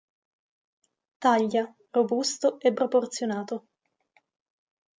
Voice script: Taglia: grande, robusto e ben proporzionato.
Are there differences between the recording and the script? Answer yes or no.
yes